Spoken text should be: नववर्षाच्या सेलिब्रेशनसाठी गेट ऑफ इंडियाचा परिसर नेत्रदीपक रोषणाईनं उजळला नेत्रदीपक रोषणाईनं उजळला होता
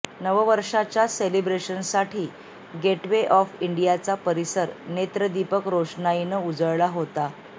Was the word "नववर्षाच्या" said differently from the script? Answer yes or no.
no